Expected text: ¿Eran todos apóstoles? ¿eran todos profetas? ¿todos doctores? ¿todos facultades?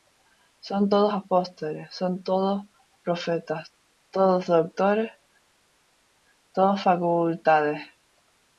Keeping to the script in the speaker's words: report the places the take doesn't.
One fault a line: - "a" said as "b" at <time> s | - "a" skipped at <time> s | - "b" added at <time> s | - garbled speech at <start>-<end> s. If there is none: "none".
- "Eran" said as "Son" at 0.6 s
- "eran" said as "son" at 1.9 s